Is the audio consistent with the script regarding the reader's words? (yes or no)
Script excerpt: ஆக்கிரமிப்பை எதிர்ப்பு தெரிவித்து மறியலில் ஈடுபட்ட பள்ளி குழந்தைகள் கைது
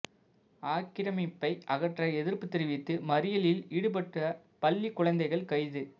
no